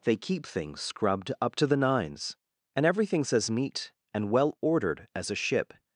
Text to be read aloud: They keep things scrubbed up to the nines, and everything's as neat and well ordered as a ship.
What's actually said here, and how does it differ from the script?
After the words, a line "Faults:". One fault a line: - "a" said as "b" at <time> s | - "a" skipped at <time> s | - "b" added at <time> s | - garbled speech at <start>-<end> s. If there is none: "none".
They keep things scrubbed up to the nines, and everything's as neat and well ordered as a ship.
Faults:
none